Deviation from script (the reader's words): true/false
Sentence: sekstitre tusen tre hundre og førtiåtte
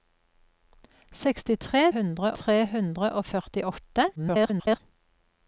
true